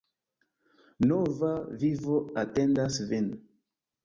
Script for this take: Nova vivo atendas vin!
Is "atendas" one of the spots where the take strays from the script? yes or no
no